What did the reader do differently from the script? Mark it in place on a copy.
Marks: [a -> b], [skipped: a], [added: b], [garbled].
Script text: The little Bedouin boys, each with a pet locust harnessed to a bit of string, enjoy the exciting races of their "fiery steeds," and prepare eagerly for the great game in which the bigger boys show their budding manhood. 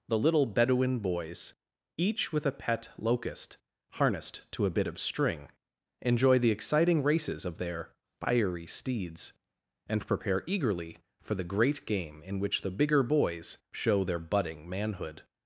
The little Bedouin boys, each with a pet locust harnessed to a bit of string, enjoy the exciting races of their "fiery steeds," and prepare eagerly for the great game in which the bigger boys show their budding manhood.